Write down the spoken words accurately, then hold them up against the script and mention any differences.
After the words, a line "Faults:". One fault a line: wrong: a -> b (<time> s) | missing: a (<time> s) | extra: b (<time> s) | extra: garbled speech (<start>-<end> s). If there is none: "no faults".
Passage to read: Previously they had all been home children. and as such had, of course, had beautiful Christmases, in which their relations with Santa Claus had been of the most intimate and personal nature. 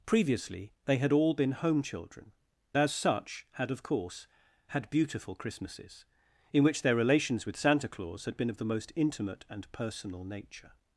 Previously they had all been home children. as such had, of course, had beautiful Christmases, in which their relations with Santa Claus had been of the most intimate and personal nature.
Faults:
missing: and (2.3 s)